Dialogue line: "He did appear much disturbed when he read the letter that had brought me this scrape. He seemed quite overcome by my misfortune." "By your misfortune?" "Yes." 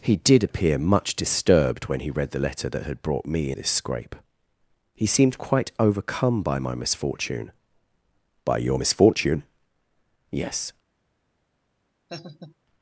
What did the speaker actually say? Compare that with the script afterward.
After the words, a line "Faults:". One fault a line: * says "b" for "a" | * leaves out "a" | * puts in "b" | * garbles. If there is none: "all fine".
"He did appear much disturbed when he read the letter that had brought me this scrape. He seemed quite overcome by my misfortune." "By your misfortune?" "Yes."
Faults:
all fine